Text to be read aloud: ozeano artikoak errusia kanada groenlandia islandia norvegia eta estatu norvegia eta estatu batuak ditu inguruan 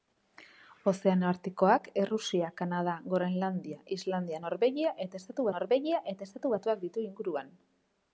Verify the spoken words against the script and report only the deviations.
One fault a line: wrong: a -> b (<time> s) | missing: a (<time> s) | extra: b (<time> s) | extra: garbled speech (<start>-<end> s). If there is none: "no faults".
no faults